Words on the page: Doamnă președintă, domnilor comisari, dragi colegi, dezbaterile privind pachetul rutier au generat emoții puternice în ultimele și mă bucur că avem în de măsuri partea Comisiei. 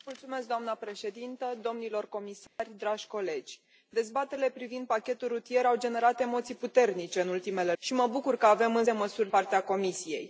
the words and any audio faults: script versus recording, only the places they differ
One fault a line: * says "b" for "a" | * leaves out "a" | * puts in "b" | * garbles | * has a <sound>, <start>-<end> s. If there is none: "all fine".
* has a dropout, 2.5-2.6 s